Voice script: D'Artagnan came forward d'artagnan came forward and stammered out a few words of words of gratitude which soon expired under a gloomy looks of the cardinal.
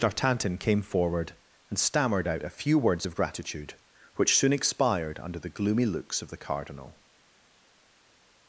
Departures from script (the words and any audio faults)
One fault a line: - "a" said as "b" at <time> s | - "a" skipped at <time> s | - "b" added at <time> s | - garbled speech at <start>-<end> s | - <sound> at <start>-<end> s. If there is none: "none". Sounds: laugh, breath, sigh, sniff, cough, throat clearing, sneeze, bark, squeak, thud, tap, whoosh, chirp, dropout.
- "d'artagnan came forward" skipped at 1.3 s
- "words of" skipped at 3.2 s
- "a" said as "the" at 5.4 s